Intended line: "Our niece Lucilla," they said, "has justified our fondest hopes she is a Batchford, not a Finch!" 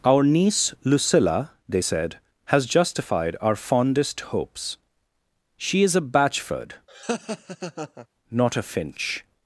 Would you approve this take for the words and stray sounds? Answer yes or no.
no